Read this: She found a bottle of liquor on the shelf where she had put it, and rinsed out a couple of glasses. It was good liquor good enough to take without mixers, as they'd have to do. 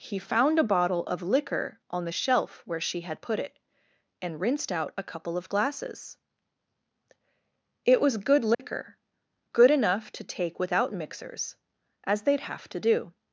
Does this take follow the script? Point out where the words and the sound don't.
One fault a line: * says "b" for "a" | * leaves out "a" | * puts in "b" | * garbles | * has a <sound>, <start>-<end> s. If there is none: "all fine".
* says "He" for "She"
* has a dropout, 8.5-8.6 s